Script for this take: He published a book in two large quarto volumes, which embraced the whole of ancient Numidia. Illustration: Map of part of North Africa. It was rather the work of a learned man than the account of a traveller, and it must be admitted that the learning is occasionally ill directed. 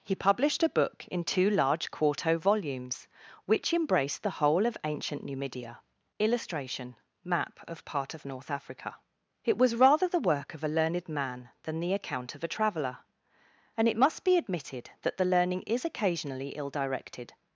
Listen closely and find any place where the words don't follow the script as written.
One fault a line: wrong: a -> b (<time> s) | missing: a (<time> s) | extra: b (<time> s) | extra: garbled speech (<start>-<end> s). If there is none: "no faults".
no faults